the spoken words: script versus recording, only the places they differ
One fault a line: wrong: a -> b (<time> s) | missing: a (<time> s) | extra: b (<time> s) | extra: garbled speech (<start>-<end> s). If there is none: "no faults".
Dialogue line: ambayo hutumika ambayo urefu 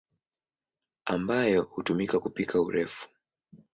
wrong: ambayo -> kupika (2.2 s)